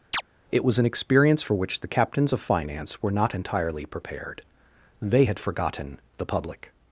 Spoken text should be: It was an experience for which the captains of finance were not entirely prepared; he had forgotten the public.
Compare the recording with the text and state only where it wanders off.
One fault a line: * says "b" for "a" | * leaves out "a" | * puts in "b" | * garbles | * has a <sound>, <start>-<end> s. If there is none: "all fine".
* has a chirp, 0.1-0.2 s
* says "they" for "he"